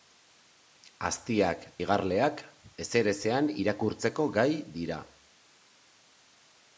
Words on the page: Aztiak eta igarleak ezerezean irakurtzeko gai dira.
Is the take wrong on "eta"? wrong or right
wrong